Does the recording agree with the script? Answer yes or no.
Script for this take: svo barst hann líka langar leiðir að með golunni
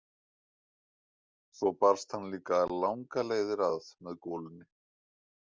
yes